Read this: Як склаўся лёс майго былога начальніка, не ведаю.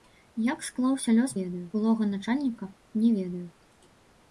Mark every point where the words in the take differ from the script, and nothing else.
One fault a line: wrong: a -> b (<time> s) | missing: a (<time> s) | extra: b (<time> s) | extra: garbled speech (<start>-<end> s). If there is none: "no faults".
wrong: майго -> ведаю (1.4 s)